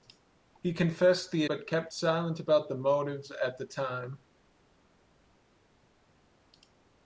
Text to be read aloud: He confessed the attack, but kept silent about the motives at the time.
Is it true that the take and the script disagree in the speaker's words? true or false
true